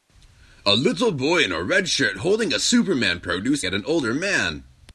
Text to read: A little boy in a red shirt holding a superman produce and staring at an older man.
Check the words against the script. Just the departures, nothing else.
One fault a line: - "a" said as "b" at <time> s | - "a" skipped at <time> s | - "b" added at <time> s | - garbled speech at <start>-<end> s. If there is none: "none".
- "and staring" skipped at 3.6 s